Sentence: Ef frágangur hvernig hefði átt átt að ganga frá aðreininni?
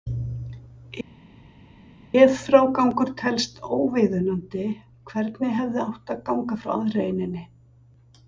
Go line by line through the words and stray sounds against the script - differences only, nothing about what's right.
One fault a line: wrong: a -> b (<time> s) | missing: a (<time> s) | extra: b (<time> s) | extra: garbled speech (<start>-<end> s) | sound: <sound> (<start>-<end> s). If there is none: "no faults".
extra: telst óviðunandi (3.2 s)
missing: átt (6.2 s)